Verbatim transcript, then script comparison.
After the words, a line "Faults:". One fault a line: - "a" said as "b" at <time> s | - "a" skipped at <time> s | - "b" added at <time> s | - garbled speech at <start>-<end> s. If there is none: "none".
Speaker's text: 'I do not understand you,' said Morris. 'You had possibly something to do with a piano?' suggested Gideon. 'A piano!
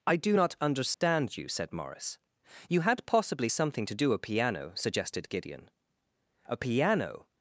'I do not understand you,' said Morris. 'You had possibly something to do a piano?' suggested Gideon. 'A piano!
Faults:
- "with" skipped at 4.1 s